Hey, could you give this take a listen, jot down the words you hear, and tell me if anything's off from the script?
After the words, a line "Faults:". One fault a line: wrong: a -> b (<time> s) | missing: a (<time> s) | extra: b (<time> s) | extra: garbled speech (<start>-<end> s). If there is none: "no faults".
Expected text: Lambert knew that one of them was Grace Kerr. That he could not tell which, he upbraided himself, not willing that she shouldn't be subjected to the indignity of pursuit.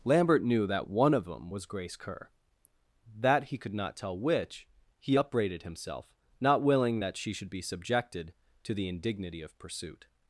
Lambert knew that one of them was Grace Kerr. That he could not tell which, he upbraided himself, not willing that she should be subjected to the indignity of pursuit.
Faults:
wrong: shouldn't -> should (7.3 s)